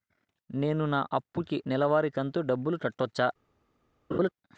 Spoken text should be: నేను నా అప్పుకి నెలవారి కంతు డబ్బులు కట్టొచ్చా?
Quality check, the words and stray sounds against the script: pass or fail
fail